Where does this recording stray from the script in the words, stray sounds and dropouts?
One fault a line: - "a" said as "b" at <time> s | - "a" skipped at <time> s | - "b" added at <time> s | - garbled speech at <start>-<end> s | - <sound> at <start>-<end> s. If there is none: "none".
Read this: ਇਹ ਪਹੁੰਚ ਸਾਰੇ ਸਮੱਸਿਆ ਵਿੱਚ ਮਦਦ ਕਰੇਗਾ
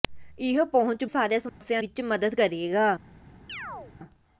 - dropout at 1.5-1.6 s
- chirp at 3.5-3.9 s